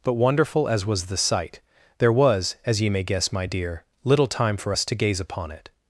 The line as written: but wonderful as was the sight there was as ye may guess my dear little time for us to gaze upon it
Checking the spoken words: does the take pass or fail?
pass